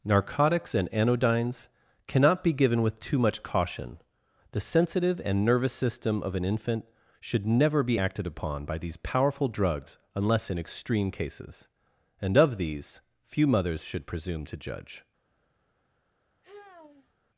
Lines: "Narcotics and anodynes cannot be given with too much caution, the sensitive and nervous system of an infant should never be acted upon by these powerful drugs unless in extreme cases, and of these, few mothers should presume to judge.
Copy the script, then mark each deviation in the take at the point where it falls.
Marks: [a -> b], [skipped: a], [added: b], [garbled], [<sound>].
"Narcotics and anodynes cannot be given with too much caution, the sensitive and nervous system of an infant should never be acted upon by these powerful drugs unless in extreme cases, and of these, few mothers should presume to judge. [sigh]